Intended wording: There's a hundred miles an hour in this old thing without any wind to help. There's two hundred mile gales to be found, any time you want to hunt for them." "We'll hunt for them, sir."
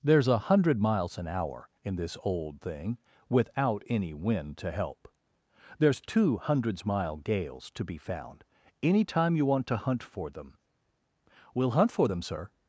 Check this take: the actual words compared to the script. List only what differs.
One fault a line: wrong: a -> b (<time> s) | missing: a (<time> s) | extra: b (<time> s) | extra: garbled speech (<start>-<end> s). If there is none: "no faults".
wrong: hundred -> hundreds (6.4 s)